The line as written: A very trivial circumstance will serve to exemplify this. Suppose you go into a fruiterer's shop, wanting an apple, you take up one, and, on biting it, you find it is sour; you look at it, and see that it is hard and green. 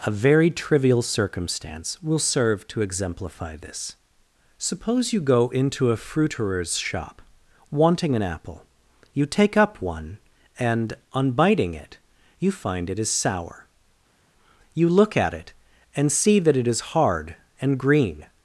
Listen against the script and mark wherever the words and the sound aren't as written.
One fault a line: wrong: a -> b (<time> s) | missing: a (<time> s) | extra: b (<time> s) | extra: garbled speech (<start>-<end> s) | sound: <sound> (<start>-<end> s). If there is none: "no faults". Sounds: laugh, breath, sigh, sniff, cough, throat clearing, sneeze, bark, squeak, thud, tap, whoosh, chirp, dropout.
no faults